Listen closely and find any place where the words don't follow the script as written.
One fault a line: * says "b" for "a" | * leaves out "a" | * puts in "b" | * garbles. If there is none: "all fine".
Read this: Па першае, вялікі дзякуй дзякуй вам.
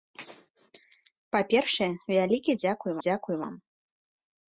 all fine